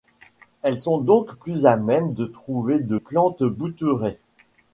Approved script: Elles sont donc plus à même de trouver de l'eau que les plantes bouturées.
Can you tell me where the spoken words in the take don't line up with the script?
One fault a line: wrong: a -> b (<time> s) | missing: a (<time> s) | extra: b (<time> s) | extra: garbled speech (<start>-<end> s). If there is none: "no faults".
missing: l'eau que les (3.0 s)